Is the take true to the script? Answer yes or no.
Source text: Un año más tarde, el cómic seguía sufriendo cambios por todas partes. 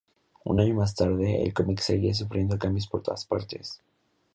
yes